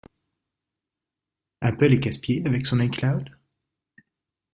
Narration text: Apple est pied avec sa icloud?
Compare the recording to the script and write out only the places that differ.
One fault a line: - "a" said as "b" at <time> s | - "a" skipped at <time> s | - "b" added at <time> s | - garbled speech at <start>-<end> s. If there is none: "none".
- "casse" added at 2.0 s
- "sa" said as "son" at 2.6 s